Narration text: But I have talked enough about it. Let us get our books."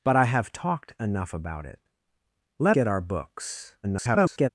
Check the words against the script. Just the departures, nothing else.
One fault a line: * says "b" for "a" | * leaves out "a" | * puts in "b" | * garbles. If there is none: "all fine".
* leaves out "us"
* garbles